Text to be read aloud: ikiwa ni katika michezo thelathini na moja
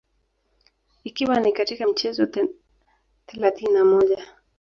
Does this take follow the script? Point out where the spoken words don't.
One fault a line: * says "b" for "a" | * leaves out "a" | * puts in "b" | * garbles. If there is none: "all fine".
all fine